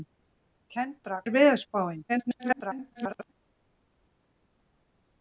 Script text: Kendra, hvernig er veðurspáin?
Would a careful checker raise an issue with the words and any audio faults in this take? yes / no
yes